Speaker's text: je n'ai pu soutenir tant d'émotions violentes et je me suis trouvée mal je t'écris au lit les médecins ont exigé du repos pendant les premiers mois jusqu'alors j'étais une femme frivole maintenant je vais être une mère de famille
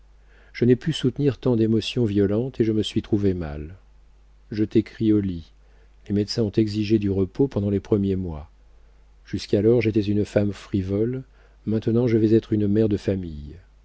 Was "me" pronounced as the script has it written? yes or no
yes